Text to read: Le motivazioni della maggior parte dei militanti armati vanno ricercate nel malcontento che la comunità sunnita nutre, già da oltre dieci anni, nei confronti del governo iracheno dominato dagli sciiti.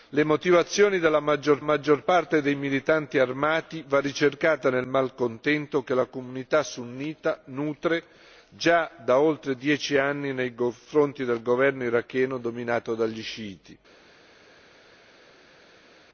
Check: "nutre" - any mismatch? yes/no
no